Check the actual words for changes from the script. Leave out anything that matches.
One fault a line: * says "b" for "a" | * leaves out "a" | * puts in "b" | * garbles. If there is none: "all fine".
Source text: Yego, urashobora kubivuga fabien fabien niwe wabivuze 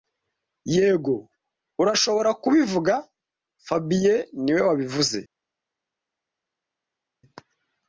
* leaves out "fabien"